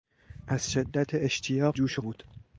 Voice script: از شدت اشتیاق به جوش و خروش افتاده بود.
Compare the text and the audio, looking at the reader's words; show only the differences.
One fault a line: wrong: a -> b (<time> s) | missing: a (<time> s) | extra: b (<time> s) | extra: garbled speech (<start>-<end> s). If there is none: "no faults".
missing: به (1.8 s)
missing: خروش افتاده (2.0 s)